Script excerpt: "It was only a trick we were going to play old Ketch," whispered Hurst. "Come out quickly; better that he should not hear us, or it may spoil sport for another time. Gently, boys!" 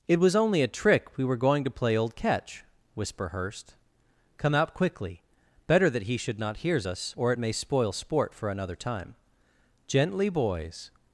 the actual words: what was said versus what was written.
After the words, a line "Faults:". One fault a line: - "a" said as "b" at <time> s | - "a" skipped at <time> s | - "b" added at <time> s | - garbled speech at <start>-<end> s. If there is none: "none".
"It was only a trick we were going to play old Ketch," whisper Hurst. "Come out quickly; better that he should not hears us, or it may spoil sport for another time. Gently, boys!"
Faults:
- "whispered" said as "whisper" at 3.0 s
- "hear" said as "hears" at 6.6 s